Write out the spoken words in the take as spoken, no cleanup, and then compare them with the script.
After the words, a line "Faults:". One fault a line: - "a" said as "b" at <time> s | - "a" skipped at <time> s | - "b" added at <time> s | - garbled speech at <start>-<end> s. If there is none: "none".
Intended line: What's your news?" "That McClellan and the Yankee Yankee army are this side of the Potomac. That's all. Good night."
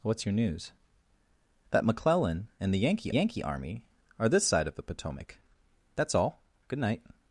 What's your news?" "That McClellan and the Yankee Yankee army are this side of the Potomac. That's all. Good night."
Faults:
none